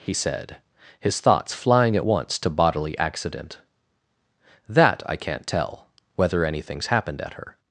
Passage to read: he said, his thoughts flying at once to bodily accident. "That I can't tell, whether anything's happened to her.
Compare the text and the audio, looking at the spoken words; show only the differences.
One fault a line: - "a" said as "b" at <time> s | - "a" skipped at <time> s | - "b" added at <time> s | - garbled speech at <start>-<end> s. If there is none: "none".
- "to" said as "at" at 7.2 s